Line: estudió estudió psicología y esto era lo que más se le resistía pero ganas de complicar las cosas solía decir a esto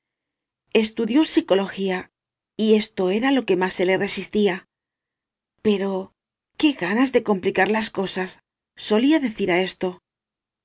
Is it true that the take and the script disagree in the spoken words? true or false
true